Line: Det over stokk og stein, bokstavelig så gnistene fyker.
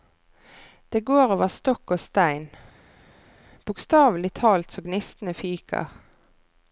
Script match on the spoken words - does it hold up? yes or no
no